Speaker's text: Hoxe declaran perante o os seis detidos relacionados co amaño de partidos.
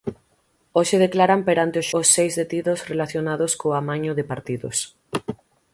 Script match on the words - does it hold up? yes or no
yes